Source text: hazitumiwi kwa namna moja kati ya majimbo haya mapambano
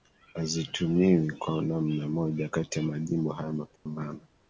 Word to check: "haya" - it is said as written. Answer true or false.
true